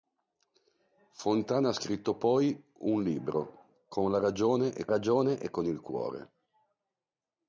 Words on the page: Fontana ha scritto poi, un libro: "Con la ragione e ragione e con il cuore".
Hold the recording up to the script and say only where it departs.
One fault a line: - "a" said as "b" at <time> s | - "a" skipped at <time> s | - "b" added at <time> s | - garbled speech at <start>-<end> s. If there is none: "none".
none